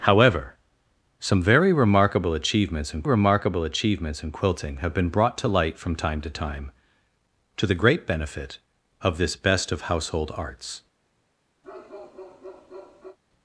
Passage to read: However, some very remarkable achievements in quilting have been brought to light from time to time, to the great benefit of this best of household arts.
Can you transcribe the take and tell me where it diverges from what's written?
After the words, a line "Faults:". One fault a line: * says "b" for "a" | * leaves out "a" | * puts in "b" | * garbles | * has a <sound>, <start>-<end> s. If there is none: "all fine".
However, some very remarkable achievements in remarkable achievements in quilting have been brought to light from time to time, to the great benefit of this best of household arts.
Faults:
* puts in "remarkable achievements in"
* has a bark, 11.6-13.2 s